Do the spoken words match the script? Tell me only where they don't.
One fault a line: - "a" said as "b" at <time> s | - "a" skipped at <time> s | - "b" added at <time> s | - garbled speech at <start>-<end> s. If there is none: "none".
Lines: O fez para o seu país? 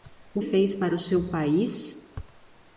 none